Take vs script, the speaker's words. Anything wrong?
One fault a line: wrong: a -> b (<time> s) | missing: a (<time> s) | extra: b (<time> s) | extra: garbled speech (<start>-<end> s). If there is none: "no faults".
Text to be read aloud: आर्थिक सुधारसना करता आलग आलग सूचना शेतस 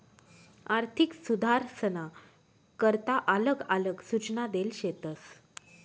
extra: देल (4.5 s)